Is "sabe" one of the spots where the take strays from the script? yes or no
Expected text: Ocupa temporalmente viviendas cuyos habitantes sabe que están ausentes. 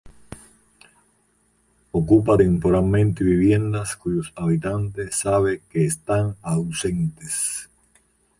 no